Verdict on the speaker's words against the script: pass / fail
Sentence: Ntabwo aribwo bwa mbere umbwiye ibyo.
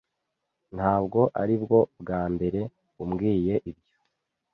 pass